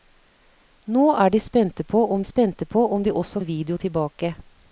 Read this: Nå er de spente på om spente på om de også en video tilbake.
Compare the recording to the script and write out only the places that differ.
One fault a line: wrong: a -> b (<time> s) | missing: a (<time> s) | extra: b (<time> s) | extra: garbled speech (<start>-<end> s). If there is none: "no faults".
no faults